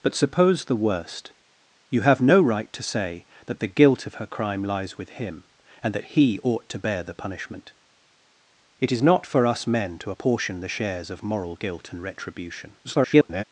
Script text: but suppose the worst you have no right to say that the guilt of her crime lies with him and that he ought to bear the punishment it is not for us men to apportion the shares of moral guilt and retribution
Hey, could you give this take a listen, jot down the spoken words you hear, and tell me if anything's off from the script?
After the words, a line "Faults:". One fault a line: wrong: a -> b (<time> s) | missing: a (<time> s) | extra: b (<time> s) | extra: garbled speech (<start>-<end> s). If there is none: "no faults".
but suppose the worst you have no right to say that the guilt of her crime lies with him and that he ought to bear the punishment it is not for us men to apportion the shares of moral guilt and retribution [garbled]
Faults:
extra: garbled speech (12.8-13.4 s)